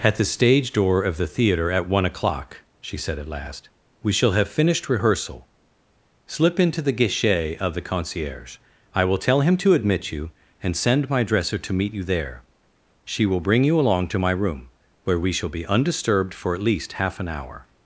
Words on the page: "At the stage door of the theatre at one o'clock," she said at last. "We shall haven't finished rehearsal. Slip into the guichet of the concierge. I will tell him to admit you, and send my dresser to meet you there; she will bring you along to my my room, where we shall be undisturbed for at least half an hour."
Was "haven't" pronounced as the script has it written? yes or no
no